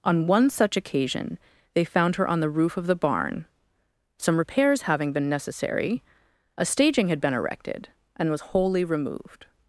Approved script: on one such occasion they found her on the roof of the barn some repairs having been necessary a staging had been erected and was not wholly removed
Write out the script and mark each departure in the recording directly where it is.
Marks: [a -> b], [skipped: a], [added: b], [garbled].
on one such occasion they found her on the roof of the barn some repairs having been necessary a staging had been erected and was [skipped: not] wholly removed